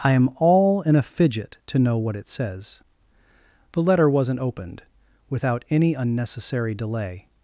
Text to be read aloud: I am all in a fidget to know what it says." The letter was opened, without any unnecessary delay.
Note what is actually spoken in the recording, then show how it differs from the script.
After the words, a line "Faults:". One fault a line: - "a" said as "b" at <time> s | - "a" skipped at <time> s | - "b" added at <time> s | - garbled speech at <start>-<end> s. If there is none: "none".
I am all in a fidget to know what it says." The letter wasn't opened, without any unnecessary delay.
Faults:
- "was" said as "wasn't" at 4.1 s